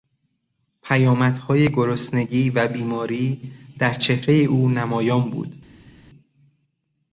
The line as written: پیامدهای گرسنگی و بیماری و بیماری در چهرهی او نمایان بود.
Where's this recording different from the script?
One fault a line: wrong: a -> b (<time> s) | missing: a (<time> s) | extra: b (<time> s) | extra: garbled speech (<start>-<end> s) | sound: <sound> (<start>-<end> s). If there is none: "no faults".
missing: و بیماری (3.5 s)